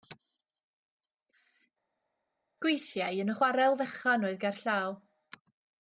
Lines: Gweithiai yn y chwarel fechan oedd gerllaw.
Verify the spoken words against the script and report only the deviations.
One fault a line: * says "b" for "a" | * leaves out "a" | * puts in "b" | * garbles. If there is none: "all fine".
all fine